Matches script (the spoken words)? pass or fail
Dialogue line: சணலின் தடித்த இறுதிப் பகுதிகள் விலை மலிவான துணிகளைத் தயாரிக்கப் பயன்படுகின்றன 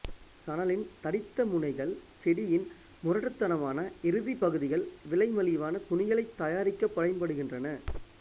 fail